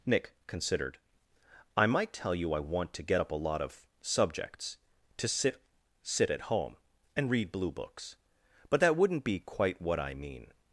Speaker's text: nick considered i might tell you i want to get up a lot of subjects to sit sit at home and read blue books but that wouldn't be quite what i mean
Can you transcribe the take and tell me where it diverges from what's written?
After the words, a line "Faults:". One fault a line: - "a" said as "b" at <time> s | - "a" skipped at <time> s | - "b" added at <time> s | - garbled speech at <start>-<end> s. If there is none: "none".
nick considered i might tell you i want to get up a lot of subjects to sit sit at home and read blue books but that wouldn't be quite what i mean
Faults:
none